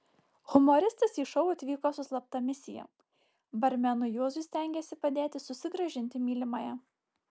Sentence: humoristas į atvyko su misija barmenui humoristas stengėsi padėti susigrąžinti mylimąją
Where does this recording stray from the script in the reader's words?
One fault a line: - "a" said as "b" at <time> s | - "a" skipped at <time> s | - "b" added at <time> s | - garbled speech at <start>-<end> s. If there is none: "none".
- "šou" added at 1.3 s
- "slapta" added at 2.1 s
- "humoristas" said as "juozui" at 4.1 s